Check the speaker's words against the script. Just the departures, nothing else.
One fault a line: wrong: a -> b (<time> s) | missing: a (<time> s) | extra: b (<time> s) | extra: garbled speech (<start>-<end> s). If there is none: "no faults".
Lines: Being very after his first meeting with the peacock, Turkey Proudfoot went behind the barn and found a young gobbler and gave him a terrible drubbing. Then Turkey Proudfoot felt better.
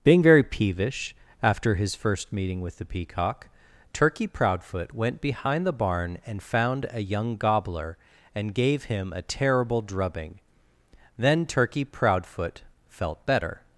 extra: peevish (0.4 s)